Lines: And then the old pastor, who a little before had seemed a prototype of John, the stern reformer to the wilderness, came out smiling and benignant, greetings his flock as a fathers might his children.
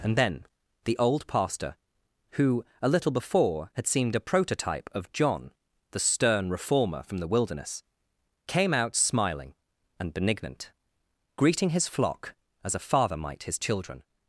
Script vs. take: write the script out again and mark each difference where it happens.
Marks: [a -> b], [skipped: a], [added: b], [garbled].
And then the old pastor, who a little before had seemed a prototype of John, the stern reformer [to -> from] the wilderness, came out smiling and benignant, [greetings -> greeting] his flock as a [fathers -> father] might his children.